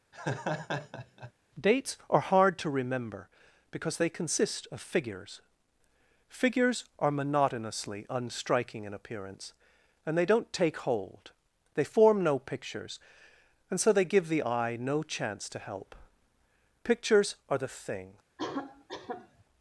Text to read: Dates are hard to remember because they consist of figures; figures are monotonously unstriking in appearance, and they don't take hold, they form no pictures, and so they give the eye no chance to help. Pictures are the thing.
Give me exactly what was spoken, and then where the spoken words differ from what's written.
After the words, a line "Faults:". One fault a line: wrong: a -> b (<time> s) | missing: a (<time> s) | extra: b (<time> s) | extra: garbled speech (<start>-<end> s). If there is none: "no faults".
Dates are hard to remember because they consist of figures; figures are monotonously unstriking in appearance, and they don't take hold, they form no pictures, and so they give the eye no chance to help. Pictures are the thing.
Faults:
no faults